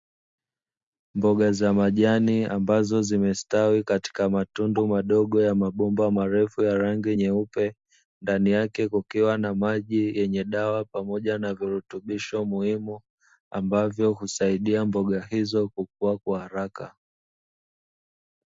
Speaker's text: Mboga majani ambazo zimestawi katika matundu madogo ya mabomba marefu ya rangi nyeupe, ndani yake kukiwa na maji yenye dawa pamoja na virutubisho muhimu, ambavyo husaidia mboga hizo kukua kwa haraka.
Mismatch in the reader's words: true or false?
true